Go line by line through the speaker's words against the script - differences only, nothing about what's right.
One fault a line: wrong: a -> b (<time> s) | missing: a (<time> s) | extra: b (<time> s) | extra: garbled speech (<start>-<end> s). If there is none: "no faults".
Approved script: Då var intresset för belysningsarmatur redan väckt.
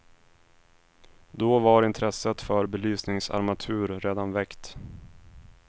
no faults